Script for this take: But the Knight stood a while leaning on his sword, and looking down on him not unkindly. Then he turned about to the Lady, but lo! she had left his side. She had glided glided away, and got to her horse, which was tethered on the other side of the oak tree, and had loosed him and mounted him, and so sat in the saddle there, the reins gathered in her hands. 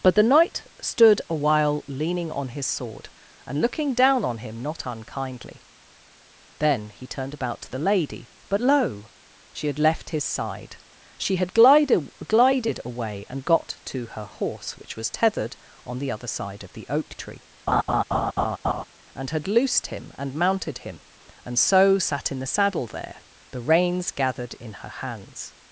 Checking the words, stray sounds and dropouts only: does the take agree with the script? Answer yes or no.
no